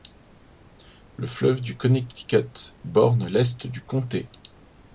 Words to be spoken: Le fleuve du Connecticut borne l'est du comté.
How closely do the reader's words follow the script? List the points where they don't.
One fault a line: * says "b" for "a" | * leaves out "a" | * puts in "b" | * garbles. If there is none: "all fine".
all fine